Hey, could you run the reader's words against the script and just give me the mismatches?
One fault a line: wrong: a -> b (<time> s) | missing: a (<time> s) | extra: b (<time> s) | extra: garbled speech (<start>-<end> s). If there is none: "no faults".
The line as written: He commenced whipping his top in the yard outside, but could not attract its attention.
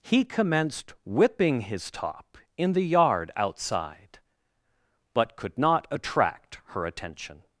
wrong: its -> her (6.7 s)